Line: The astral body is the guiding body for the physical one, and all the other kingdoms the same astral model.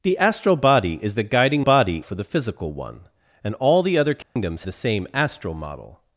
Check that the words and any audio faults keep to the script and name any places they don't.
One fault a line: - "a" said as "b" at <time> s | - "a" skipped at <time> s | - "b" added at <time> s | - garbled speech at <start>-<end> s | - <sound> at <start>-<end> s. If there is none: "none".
- dropout at 4.2-4.4 s